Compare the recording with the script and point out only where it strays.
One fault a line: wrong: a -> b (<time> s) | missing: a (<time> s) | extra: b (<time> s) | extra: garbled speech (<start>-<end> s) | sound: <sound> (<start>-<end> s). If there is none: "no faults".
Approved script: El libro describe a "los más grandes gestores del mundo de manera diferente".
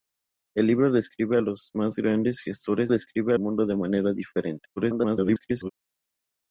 wrong: del -> describe (2.9 s)
extra: garbled speech (4.8-5.7 s)